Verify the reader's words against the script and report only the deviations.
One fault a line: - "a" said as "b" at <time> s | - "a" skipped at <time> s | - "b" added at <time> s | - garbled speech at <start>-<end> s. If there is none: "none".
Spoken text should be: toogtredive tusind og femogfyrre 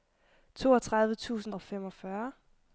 none